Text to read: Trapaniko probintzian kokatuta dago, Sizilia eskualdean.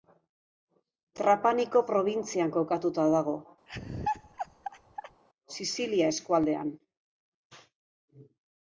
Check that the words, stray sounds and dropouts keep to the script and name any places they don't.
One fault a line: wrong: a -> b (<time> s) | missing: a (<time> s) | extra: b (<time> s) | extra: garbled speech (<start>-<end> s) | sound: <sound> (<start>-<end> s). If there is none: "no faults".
sound: laugh (3.7-5.2 s)